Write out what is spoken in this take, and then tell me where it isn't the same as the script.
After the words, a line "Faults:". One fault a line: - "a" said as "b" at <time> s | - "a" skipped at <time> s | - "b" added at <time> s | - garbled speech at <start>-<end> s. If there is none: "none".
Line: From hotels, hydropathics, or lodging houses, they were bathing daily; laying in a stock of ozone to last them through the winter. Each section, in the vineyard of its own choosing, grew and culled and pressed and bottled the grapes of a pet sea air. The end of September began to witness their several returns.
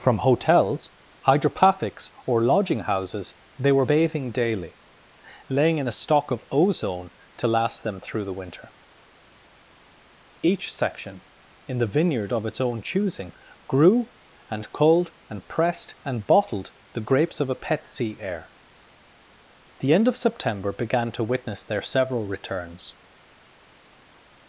From hotels, hydropathics, or lodging houses, they were bathing daily; laying in a stock of ozone to last them through the winter. Each section, in the vineyard of its own choosing, grew and culled and pressed and bottled the grapes of a pet sea air. The end of September began to witness their several returns.
Faults:
none